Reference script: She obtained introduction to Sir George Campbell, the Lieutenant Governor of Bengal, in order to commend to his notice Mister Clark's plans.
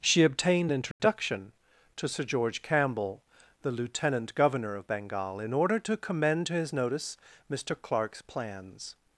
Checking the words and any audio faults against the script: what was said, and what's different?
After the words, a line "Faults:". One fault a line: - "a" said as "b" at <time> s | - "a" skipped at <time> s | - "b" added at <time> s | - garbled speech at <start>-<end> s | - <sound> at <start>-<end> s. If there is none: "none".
She obtained introduction to Sir George Campbell, the Lieutenant Governor of Bengal, in order to commend to his notice Mister Clark's plans.
Faults:
- dropout at 0.9-1.0 s